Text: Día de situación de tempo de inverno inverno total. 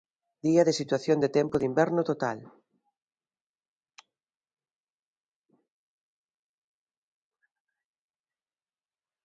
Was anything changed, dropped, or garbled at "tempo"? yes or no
no